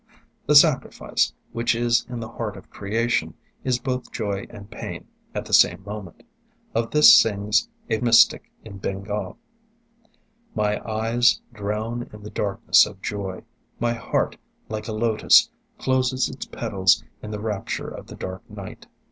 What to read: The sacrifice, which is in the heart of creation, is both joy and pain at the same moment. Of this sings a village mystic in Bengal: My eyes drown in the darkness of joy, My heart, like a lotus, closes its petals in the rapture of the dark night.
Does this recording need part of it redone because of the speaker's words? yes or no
yes